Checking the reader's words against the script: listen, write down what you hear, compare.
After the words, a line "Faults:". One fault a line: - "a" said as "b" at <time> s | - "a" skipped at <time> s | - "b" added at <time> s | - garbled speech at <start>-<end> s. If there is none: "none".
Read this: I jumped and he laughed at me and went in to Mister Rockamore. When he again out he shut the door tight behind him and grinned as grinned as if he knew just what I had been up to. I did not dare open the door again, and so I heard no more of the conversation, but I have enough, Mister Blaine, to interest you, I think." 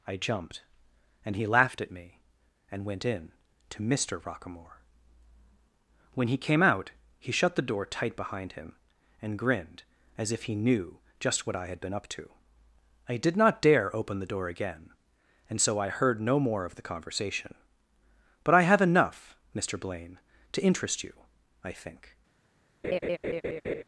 I jumped and he laughed at me and went in to Mister Rockamore. When he came out he shut the door tight behind him and grinned as if he knew just what I had been up to. I did not dare open the door again, and so I heard no more of the conversation, but I have enough, Mister Blaine, to interest you, I think."
Faults:
- "again" said as "came" at 6.4 s
- "grinned as" skipped at 10.3 s